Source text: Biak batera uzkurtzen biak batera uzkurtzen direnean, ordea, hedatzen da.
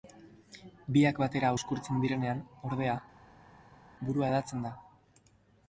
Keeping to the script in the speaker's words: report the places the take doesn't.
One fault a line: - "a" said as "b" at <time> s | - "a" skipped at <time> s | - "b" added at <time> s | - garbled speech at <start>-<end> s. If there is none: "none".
- "biak batera uzkurtzen" skipped at 2.1 s
- "burua" added at 4.1 s